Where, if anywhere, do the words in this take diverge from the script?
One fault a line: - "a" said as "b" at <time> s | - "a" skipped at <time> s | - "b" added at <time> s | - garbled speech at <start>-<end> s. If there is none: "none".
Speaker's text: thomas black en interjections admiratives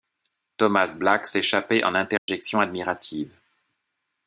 - "s'échappait" added at 1.3 s